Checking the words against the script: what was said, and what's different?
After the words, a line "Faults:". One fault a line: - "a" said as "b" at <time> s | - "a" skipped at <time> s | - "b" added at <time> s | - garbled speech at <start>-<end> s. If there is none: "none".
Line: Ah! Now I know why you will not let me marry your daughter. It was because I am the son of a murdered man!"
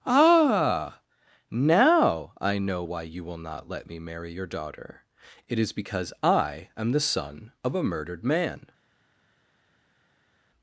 Ah! Now I know why you will not let me marry your daughter. It is because I am the son of a murdered man!"
Faults:
- "was" said as "is" at 5.6 s